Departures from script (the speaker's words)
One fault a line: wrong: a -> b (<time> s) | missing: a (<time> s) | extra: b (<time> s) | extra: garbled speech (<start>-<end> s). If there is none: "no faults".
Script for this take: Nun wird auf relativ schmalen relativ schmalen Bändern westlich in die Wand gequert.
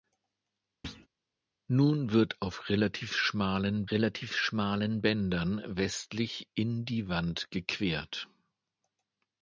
no faults